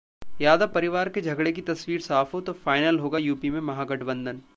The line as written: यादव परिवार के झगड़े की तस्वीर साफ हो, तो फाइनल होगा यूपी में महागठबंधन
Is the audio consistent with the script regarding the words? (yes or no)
yes